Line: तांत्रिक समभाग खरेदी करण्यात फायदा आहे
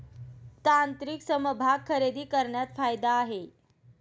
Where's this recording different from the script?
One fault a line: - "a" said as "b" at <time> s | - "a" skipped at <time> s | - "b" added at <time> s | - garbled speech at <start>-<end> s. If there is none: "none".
none